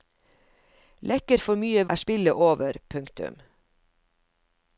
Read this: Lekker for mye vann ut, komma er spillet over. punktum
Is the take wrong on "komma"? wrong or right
wrong